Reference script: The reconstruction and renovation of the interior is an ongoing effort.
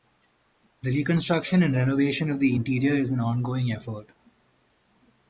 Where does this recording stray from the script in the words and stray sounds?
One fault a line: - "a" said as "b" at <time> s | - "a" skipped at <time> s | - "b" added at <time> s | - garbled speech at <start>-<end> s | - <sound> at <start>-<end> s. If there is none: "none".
none